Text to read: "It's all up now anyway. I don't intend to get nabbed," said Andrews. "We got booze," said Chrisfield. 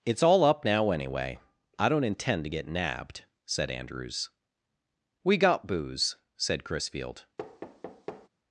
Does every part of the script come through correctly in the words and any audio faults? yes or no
no